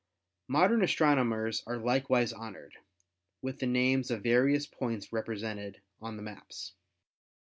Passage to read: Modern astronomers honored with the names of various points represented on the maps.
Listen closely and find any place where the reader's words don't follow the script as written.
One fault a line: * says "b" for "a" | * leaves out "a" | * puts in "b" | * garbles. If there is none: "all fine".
* puts in "are likewise"